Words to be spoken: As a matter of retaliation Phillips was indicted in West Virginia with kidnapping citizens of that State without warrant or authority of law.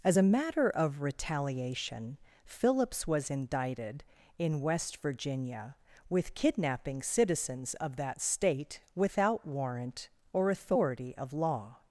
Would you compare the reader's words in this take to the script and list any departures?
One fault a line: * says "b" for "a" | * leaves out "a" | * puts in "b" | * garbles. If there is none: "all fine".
all fine